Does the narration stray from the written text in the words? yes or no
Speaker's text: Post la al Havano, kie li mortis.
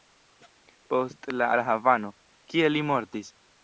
no